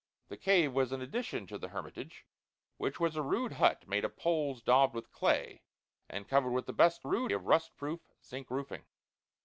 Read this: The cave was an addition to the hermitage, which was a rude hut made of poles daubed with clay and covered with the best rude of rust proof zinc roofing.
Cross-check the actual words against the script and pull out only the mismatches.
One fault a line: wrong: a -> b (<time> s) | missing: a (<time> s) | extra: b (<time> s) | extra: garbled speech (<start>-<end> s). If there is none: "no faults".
no faults